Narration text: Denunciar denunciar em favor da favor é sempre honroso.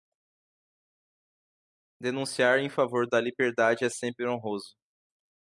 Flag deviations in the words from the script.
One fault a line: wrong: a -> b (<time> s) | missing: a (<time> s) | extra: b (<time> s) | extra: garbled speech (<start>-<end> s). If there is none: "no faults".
missing: denunciar (2.6 s)
wrong: favor -> liberdade (3.2 s)